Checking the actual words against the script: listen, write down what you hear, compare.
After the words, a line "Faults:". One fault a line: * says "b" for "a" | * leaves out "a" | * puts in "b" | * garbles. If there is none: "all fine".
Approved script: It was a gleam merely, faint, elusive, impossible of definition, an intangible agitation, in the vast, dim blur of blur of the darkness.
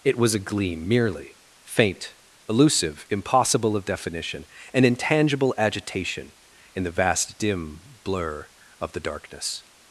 It was a gleam merely, faint, elusive, impossible of definition, an intangible agitation, in the vast, dim blur of the darkness.
Faults:
* leaves out "blur of"